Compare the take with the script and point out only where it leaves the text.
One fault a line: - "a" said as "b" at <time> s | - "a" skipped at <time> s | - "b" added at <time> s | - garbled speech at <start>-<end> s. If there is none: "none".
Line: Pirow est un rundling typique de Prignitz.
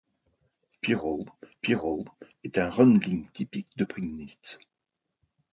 - "pirow" added at 1.6 s